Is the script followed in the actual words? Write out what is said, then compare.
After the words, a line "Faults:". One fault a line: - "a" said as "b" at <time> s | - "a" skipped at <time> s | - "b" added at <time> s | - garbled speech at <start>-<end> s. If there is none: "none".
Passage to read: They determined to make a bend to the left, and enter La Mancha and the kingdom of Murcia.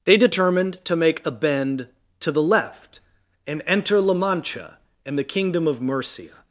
They determined to make a bend to the left, and enter La Mancha and the kingdom of Murcia.
Faults:
none